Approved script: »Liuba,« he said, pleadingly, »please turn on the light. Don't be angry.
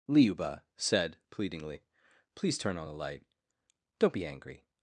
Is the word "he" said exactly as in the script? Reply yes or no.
no